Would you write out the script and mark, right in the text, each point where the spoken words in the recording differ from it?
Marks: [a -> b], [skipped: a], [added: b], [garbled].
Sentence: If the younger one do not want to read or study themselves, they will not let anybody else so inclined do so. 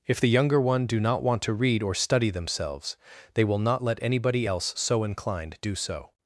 If the younger one do not want to read or study themselves, they will not let anybody else so inclined do so.